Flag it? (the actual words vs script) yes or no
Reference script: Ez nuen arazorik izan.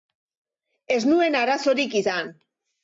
no